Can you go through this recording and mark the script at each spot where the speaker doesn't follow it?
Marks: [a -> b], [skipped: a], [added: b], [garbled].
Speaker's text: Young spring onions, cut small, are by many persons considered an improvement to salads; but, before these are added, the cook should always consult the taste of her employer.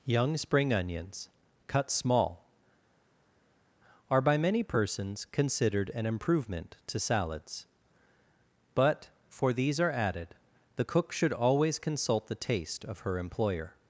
Young spring onions, cut small, are by many persons considered an improvement to salads; but, [before -> for] these are added, the cook should always consult the taste of her employer.